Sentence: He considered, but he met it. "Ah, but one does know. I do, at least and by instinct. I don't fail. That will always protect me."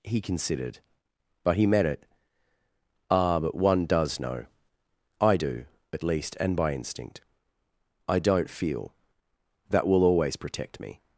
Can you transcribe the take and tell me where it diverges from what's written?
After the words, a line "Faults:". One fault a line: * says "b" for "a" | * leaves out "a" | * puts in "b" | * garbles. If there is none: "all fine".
He considered, but he met it. "Ah, but one does know. I do, at least and by instinct. I don't feel. That will always protect me."
Faults:
* says "feel" for "fail"